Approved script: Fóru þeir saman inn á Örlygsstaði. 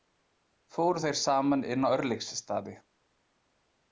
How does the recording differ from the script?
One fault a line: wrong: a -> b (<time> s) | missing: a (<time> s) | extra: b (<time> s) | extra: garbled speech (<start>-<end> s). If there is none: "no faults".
no faults